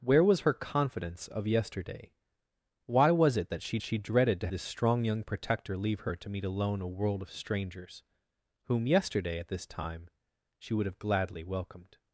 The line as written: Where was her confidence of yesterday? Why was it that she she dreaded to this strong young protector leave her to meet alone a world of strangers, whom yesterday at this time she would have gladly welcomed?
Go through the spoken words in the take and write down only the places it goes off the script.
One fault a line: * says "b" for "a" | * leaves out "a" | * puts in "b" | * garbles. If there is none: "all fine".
all fine